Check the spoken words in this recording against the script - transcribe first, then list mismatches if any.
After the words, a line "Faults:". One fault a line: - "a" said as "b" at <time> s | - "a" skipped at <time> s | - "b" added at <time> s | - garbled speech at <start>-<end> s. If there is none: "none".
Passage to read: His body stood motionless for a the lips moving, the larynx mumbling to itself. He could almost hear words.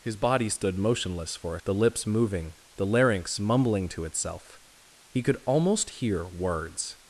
His body stood motionless for a the lips moving, the larynx mumbling to itself. He could almost hear words.
Faults:
none